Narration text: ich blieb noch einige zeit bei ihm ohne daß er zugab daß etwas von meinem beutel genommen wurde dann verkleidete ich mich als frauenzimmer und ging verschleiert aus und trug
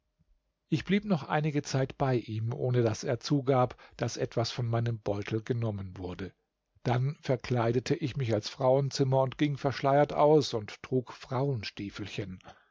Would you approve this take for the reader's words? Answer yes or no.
yes